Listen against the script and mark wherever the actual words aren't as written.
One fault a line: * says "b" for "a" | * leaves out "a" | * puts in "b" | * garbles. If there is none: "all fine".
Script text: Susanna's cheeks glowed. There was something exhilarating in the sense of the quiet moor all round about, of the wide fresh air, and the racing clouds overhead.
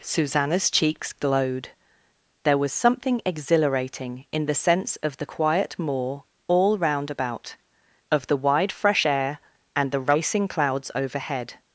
all fine